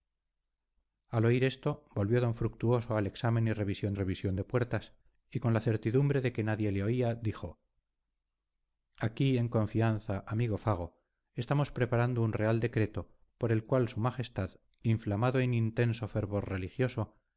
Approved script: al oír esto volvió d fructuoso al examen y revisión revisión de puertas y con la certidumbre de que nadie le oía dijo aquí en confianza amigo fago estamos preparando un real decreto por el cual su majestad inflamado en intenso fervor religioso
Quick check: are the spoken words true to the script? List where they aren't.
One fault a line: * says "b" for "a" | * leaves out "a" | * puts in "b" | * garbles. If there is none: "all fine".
all fine